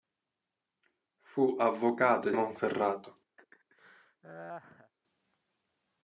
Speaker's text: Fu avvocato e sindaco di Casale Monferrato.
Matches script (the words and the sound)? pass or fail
fail